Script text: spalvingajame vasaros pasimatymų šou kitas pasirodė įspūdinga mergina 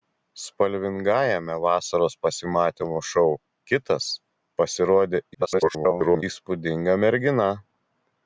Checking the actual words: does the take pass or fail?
fail